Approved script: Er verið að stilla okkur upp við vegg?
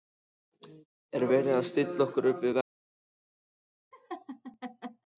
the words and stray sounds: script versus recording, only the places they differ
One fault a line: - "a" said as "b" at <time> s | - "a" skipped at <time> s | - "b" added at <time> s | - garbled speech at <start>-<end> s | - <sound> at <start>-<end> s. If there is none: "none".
- laugh at 3.9-5.0 s